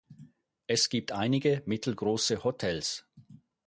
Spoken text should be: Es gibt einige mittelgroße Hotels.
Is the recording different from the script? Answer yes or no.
no